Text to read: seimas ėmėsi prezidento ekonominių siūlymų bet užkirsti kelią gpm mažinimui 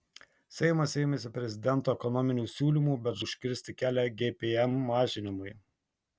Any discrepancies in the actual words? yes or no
no